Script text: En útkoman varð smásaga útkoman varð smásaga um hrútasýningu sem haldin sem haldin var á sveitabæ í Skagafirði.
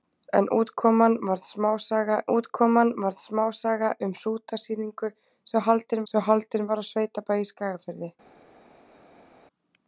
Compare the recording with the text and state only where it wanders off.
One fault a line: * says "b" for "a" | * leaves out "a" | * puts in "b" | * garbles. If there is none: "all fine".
all fine